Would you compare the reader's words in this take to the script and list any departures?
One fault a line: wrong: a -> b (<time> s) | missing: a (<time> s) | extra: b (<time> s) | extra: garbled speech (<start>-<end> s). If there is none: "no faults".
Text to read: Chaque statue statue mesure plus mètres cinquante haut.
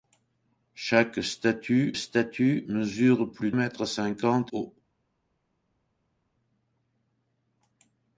no faults